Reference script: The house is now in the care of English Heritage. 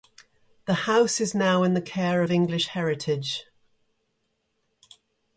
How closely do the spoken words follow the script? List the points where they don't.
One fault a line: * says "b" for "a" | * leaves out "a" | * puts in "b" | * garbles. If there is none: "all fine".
all fine